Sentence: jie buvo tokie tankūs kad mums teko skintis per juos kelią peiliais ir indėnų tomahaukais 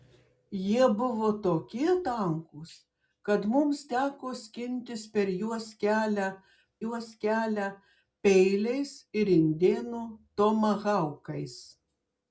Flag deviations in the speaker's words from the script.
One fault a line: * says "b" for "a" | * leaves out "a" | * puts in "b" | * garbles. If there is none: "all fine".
* puts in "juos kelią"